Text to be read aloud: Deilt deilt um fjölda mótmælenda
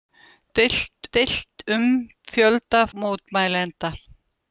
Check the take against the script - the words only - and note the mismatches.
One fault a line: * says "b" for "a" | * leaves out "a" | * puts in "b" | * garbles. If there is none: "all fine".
all fine